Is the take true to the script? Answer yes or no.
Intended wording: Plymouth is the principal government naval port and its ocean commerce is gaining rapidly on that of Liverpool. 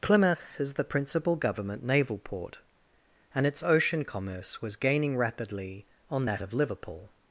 no